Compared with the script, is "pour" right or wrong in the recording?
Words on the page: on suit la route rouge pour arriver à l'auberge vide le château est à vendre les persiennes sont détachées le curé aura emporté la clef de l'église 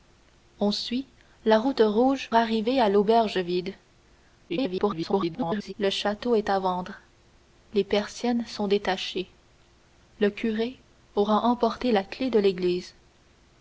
wrong